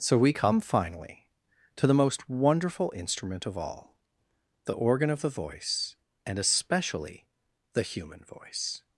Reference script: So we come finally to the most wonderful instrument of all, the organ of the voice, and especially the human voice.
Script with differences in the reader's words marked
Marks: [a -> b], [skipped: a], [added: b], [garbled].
So we come finally to the most wonderful instrument of all, the organ of the voice, and especially the human voice.